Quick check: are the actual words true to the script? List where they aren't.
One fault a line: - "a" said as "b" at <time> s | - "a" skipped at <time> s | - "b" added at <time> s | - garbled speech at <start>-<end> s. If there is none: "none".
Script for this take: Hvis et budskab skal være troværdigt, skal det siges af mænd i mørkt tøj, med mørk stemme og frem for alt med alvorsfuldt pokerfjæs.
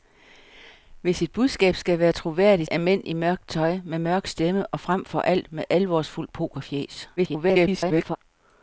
- "skal det siges" skipped at 2.7 s
- garbled speech at 7.2-8.2 s